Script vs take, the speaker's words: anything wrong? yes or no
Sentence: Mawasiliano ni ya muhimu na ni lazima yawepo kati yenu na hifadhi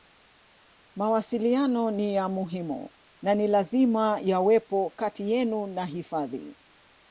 no